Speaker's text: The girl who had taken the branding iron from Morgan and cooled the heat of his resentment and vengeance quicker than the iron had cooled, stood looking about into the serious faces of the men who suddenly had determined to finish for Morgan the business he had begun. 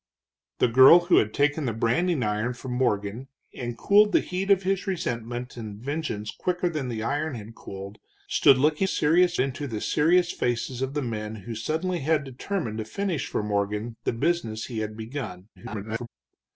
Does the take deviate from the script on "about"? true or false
true